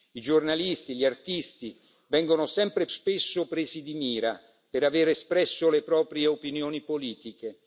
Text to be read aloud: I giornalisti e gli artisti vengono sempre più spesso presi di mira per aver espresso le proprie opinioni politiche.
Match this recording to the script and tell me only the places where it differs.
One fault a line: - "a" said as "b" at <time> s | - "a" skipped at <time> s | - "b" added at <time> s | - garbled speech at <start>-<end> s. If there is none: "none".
- "più" skipped at 2.9 s